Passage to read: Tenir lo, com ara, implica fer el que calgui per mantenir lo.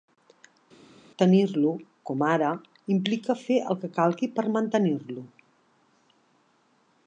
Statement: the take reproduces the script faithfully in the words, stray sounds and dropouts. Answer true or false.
true